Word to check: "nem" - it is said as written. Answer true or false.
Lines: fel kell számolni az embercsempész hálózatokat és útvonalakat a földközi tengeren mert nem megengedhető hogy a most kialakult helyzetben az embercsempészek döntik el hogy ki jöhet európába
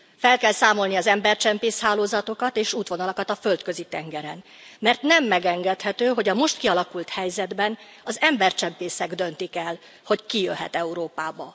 true